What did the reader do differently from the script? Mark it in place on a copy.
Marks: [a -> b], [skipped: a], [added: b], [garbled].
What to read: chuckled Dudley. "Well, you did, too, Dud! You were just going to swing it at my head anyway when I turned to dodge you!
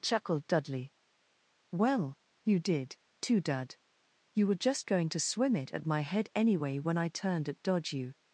chuckled Dudley. "Well, you did, too, Dud! You were just going to [swing -> swim] it at my head anyway when I turned [to -> at] dodge you!